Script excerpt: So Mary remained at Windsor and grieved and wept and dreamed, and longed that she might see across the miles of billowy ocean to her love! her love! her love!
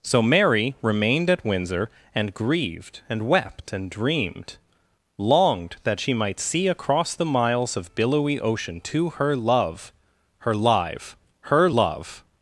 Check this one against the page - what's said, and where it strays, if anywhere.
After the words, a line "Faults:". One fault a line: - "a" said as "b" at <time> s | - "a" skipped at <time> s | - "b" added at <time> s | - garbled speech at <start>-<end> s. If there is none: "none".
So Mary remained at Windsor and grieved and wept and dreamed, longed that she might see across the miles of billowy ocean to her love! her live! her love!
Faults:
- "and" skipped at 4.6 s
- "love" said as "live" at 10.5 s